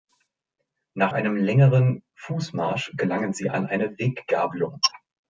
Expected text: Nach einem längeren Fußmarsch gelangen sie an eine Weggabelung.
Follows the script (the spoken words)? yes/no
yes